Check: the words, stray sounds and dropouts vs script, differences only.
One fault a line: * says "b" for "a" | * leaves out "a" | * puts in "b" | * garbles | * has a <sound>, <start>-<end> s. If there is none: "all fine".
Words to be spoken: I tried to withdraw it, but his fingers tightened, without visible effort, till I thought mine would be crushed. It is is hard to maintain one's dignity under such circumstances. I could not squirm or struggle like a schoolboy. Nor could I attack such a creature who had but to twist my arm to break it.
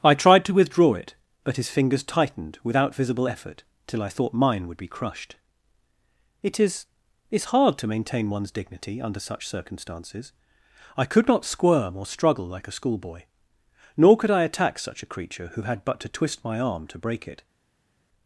all fine